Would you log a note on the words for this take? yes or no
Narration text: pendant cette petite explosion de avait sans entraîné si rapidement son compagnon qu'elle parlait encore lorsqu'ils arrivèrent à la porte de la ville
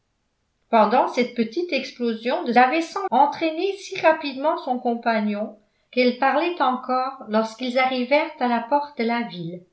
no